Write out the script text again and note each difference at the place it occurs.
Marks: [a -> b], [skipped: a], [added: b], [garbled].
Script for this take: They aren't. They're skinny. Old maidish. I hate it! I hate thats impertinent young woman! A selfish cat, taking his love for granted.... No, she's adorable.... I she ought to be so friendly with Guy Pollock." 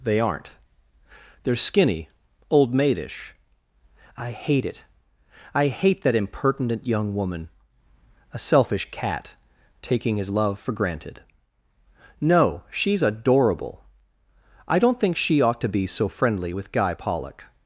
They aren't. They're skinny. Old maidish. I hate it! I hate [thats -> that] impertinent young woman! A selfish cat, taking his love for granted.... No, she's adorable.... I [added: don't think] she ought to be so friendly with Guy Pollock."